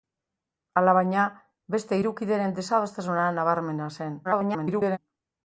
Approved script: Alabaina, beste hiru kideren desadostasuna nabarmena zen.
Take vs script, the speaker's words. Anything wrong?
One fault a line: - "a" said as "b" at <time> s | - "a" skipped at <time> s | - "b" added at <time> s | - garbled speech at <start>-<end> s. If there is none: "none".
- garbled speech at 4.2-5.0 s